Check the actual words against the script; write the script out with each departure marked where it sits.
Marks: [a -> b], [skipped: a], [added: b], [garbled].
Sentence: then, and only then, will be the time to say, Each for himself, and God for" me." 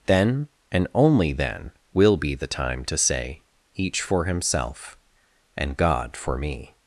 then, and only then, will be the time to say, Each for himself, and God for" me."